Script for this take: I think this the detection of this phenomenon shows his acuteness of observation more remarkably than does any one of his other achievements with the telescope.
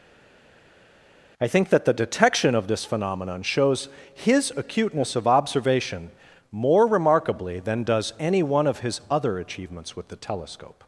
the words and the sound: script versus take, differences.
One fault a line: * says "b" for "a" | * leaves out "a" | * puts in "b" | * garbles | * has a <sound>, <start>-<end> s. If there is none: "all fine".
* says "that" for "this"